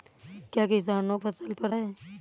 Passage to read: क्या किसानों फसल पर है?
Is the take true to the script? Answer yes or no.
yes